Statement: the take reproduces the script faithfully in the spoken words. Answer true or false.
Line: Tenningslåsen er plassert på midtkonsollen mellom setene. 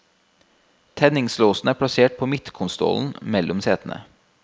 true